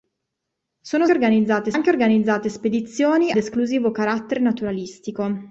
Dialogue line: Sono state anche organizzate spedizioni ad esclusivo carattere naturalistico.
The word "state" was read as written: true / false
false